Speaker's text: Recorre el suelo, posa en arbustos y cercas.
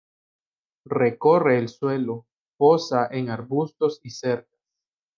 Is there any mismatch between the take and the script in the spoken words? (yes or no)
no